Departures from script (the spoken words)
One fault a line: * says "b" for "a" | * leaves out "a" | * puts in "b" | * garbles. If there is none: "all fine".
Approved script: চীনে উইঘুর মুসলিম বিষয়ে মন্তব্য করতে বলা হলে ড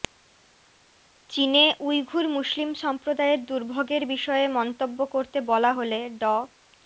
* puts in "সম্প্রদায়ের দুর্ভোগের"